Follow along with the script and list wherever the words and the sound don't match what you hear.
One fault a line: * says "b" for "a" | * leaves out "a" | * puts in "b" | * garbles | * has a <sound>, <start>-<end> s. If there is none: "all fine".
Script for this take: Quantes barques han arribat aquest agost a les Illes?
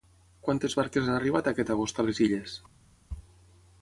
all fine